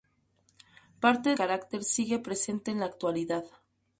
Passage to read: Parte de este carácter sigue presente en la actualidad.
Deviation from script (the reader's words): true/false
true